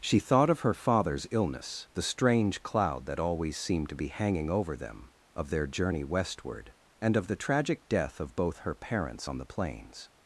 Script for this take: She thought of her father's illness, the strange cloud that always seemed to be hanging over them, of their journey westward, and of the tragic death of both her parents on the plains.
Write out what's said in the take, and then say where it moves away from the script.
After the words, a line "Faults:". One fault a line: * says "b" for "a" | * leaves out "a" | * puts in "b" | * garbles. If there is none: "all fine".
She thought of her father's illness, the strange cloud that always seemed to be hanging over them, of their journey westward, and of the tragic death of both her parents on the plains.
Faults:
all fine